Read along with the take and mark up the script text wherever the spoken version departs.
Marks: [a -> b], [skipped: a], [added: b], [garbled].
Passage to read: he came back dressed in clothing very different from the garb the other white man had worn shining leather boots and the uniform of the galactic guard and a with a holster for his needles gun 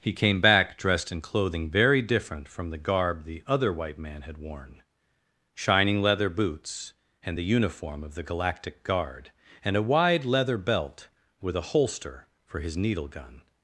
he came back dressed in clothing very different from the garb the other white man had worn shining leather boots and the uniform of the galactic guard and a [added: wide leather belt] with a holster for his [needles -> needle] gun